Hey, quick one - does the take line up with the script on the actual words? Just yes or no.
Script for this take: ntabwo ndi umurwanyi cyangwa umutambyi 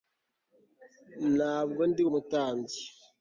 no